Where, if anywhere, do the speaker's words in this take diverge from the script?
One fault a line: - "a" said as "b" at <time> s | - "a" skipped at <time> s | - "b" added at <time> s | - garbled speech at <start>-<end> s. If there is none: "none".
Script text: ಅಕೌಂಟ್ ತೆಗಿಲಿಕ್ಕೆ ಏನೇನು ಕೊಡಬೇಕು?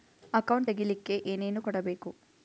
none